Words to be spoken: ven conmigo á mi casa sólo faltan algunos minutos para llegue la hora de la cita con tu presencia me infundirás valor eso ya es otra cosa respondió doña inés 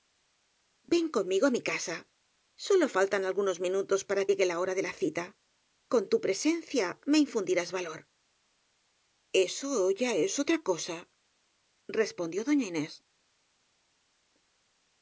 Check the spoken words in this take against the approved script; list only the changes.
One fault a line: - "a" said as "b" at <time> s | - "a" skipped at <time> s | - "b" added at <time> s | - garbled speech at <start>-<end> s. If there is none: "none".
none